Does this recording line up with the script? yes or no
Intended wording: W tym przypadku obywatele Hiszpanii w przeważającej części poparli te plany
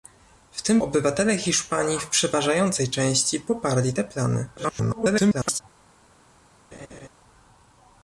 no